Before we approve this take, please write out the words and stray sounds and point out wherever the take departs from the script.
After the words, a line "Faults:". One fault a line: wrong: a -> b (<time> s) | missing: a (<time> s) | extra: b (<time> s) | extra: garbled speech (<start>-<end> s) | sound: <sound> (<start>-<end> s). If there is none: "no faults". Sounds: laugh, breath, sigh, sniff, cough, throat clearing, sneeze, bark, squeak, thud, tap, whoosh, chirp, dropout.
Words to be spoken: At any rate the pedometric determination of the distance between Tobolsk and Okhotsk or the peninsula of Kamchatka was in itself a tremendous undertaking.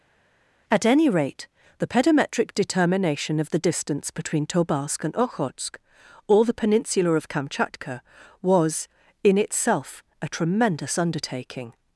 At any rate the pedometric determination of the distance between Tobolsk and Okhotsk or the peninsula of Kamchatka was in itself a tremendous undertaking.
Faults:
no faults